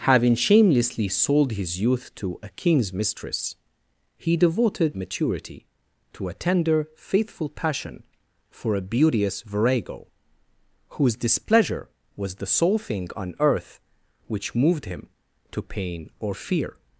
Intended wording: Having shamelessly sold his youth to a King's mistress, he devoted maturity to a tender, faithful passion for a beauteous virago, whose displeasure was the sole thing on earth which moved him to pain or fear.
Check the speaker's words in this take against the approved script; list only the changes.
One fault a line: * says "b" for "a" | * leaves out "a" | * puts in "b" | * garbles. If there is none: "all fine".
all fine